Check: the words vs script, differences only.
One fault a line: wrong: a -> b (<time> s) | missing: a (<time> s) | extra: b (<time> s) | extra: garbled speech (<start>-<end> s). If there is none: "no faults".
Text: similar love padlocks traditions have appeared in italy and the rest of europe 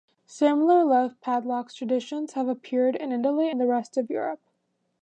no faults